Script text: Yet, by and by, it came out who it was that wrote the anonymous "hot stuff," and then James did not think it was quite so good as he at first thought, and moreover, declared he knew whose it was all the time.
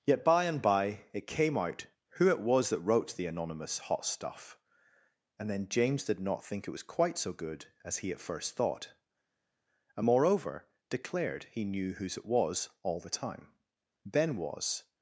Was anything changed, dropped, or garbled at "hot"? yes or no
no